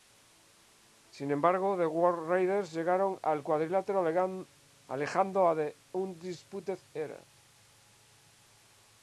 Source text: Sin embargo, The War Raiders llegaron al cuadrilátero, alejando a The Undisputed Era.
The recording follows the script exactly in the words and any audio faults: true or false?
true